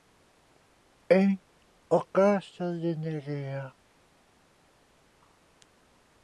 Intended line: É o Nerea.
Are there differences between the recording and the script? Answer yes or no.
yes